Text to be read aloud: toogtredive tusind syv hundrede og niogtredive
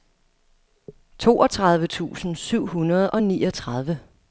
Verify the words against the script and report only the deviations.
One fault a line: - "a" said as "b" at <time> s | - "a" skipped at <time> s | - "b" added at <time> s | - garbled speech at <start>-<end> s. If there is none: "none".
none